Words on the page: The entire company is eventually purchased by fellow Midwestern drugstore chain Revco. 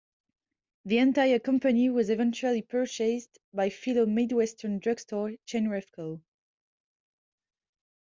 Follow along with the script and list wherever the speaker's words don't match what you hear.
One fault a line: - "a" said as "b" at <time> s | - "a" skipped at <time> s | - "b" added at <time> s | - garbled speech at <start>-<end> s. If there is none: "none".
- "is" said as "was" at 1.9 s